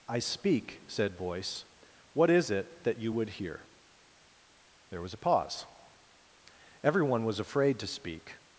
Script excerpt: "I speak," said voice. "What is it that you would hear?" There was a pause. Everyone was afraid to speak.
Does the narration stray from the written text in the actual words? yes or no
no